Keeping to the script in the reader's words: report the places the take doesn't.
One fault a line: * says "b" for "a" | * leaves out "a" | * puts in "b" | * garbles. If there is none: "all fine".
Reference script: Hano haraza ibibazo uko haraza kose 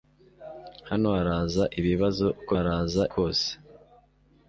all fine